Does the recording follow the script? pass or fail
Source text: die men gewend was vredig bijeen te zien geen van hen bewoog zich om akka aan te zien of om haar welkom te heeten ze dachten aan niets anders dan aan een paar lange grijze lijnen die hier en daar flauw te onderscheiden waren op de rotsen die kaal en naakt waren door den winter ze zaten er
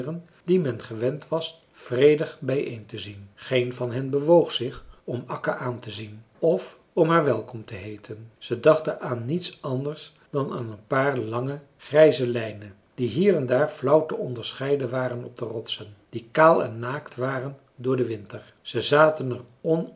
pass